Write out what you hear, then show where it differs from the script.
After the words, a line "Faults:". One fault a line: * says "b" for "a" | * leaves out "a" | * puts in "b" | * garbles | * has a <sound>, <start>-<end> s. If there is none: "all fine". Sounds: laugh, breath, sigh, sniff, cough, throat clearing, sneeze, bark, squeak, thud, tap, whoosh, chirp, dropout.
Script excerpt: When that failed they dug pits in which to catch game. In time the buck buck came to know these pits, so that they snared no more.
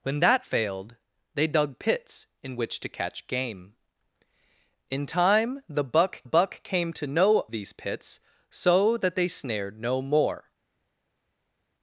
When that failed they dug pits in which to catch game. In time the buck buck came to know these pits, so that they snared no more.
Faults:
all fine